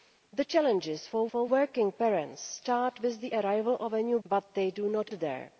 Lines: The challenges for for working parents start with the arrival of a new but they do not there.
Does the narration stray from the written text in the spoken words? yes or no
no